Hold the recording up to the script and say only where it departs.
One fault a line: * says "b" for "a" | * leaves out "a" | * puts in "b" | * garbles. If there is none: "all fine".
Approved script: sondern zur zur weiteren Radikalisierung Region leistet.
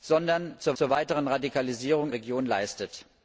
all fine